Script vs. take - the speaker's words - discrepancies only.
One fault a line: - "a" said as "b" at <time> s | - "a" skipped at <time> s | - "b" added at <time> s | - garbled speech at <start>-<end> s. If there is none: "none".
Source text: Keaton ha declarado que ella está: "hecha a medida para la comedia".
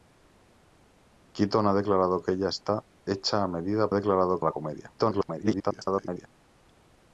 - "para" said as "declarado" at 3.9 s
- garbled speech at 5.0-6.3 s